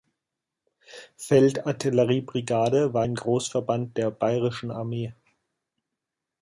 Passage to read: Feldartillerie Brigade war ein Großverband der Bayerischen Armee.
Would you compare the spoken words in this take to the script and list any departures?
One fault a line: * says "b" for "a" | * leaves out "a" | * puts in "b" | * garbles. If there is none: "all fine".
all fine